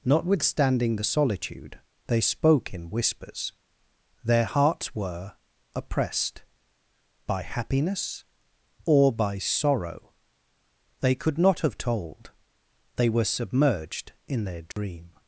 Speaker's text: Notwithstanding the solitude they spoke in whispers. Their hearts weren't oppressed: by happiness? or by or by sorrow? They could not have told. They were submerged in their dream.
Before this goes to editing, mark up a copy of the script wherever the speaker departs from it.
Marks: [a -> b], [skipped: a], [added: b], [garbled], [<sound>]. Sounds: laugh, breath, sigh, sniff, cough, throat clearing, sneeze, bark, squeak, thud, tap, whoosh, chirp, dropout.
Notwithstanding the solitude they spoke in whispers. Their hearts [weren't -> were] oppressed: by happiness? or by [skipped: or by] sorrow? They could not have told. They were submerged in their dream. [dropout]